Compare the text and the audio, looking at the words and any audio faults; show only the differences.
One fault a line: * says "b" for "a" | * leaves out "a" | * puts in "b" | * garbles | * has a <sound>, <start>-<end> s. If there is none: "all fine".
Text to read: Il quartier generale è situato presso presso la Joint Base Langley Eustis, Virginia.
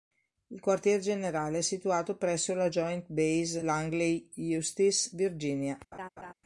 * leaves out "presso"
* has a laugh, 5.9-6.3 s